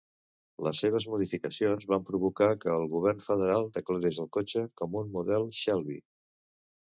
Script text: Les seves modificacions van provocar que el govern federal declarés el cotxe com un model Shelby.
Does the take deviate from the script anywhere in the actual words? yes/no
no